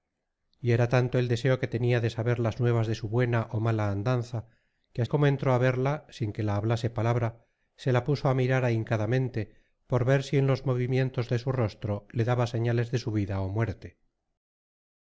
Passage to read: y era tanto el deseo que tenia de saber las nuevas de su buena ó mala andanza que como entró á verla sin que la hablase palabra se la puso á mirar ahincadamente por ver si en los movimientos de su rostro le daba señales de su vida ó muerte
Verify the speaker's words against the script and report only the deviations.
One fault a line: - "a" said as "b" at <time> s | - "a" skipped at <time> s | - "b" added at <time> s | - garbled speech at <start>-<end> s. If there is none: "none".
none